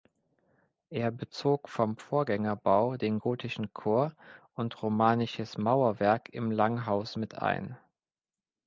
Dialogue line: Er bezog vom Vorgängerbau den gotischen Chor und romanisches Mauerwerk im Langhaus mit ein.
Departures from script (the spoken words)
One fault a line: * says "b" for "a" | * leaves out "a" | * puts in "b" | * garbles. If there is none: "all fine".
all fine